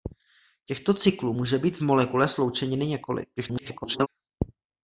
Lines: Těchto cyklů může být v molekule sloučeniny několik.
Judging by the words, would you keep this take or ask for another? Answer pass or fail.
fail